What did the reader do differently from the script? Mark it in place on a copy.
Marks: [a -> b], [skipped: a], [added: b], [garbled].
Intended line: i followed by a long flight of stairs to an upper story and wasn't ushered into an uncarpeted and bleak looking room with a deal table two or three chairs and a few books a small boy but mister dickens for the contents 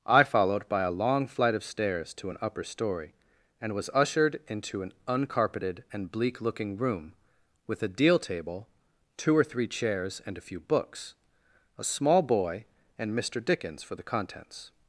i followed by a long flight of stairs to an upper story and [wasn't -> was] ushered into an uncarpeted and bleak looking room with a deal table two or three chairs and a few books a small boy [but -> and] mister dickens for the contents